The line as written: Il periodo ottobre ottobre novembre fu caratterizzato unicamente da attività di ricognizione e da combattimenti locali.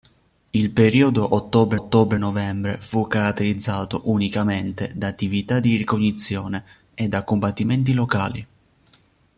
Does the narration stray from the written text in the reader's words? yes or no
no